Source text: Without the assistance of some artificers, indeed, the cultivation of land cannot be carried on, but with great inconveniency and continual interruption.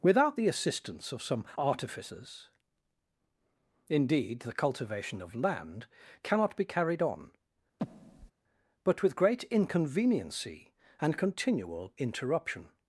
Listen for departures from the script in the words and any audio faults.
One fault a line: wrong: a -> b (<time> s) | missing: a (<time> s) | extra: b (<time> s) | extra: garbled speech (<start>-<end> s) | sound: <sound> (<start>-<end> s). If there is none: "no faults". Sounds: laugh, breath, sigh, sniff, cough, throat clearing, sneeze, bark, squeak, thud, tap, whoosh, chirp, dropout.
sound: breath (7.8-8.3 s)